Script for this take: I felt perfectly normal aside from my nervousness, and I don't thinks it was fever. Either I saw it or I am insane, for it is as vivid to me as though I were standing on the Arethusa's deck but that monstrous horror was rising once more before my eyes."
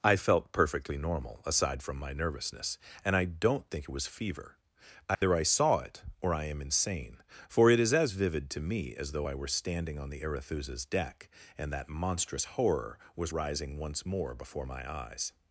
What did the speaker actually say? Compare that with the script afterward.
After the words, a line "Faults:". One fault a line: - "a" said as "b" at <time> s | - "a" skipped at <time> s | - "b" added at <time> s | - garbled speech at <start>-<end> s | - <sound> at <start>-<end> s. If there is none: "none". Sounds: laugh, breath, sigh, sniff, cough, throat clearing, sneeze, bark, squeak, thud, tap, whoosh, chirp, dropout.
I felt perfectly normal aside from my nervousness, and I don't think it was fever. Either I saw it or I am insane, for it is as vivid to me as though I were standing on the Arethusa's deck and that monstrous horror was rising once more before my eyes."
Faults:
- "thinks" said as "think" at 3.7 s
- dropout at 5.1-5.2 s
- "but" said as "and" at 11.6 s